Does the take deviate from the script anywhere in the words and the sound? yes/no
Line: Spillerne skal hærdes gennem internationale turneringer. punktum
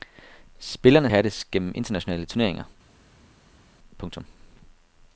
yes